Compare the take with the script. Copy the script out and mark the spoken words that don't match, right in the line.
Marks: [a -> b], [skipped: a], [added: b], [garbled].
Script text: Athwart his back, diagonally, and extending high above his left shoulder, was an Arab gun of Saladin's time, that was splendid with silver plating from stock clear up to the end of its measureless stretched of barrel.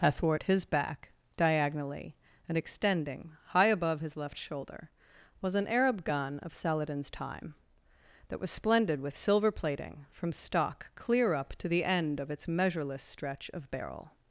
Athwart his back, diagonally, and extending high above his left shoulder, was an Arab gun of Saladin's time, that was splendid with silver plating from stock clear up to the end of its measureless [stretched -> stretch] of barrel.